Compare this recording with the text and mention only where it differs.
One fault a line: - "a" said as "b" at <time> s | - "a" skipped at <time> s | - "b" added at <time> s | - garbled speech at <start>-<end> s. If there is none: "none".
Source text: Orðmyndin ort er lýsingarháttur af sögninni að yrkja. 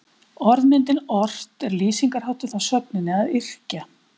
none